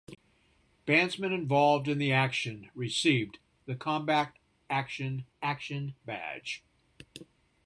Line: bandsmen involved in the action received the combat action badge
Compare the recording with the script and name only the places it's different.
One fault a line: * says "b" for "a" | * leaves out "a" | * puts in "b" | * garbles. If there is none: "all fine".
* puts in "action"